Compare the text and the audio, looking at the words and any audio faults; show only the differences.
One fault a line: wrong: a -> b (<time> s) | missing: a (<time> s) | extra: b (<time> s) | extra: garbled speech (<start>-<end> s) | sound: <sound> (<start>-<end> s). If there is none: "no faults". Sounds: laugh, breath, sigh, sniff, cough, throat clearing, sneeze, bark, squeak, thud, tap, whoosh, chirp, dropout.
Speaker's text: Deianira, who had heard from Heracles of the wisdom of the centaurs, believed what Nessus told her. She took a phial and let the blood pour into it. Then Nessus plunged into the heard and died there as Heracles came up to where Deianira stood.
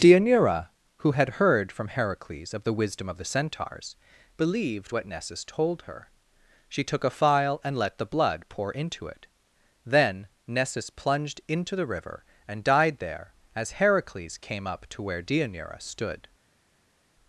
wrong: heard -> river (11.9 s)